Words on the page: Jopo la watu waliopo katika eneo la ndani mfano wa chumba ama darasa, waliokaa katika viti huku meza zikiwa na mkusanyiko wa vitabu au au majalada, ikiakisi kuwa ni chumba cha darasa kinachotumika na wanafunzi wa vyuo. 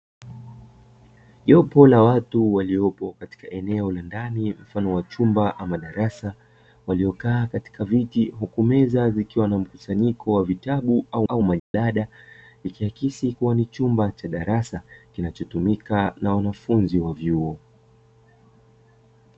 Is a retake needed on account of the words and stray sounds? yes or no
yes